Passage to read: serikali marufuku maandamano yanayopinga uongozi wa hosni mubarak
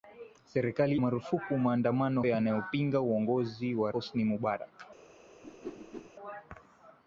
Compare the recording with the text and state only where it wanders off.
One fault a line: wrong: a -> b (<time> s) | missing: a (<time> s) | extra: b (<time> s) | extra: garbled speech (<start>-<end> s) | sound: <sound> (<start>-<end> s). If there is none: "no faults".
sound: whoosh (5.4-6.1 s)